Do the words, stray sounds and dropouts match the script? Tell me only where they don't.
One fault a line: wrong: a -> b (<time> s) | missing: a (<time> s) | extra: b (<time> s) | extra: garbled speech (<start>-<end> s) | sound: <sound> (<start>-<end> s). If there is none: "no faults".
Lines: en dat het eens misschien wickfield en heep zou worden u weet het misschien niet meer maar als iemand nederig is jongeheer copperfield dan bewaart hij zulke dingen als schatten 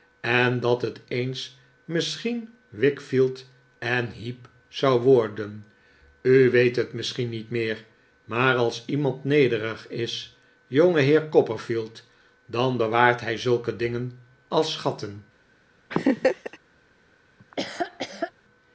sound: laugh (15.9-16.6 s)
sound: laugh (17.4-18.3 s)